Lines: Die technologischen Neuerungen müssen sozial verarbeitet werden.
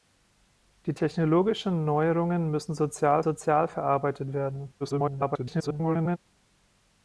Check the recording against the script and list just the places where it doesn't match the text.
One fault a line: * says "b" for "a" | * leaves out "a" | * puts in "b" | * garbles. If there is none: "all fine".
* puts in "sozial"
* garbles